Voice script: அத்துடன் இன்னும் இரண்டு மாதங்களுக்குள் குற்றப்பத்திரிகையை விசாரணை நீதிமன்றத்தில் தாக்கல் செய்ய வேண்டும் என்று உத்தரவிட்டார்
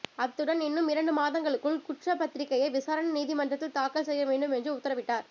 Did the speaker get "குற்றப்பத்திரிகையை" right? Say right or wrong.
right